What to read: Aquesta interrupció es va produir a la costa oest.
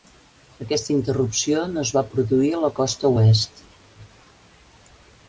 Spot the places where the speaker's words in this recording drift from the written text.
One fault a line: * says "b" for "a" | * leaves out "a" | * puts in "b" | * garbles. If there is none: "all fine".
* puts in "no"